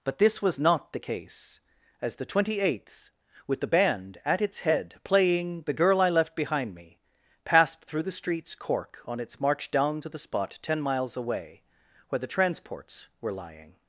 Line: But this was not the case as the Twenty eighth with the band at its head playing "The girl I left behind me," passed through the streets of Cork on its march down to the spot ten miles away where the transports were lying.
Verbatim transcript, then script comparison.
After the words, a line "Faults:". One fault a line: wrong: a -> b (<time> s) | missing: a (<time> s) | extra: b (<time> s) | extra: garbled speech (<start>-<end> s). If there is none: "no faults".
But this was not the case as the Twenty eighth with the band at its head playing "The girl I left behind me," passed through the streets Cork on its march down to the spot ten miles away where the transports were lying.
Faults:
missing: of (8.6 s)